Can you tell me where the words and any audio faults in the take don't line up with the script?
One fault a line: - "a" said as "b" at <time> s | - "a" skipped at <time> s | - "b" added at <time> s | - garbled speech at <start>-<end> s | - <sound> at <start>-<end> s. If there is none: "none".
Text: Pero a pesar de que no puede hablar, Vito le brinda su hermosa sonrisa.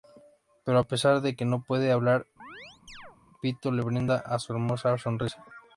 - chirp at 2.4-3.2 s